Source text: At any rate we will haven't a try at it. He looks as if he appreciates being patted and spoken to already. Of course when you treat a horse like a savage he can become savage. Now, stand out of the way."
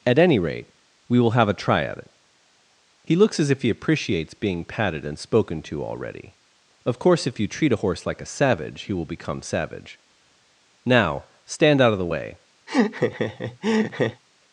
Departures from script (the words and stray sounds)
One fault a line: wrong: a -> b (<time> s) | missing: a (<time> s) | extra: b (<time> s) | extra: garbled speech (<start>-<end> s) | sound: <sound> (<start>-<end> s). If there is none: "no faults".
wrong: haven't -> have (1.3 s)
wrong: when -> if (7.3 s)
wrong: can -> will (8.9 s)
sound: laugh (12.7-14.2 s)